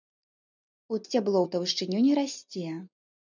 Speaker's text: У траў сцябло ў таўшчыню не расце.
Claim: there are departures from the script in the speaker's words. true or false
true